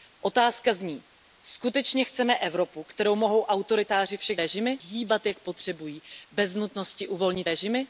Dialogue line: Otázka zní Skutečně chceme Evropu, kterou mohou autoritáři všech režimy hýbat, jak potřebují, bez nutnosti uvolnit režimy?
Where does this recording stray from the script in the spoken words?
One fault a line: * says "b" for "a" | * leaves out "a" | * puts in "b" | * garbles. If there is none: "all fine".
all fine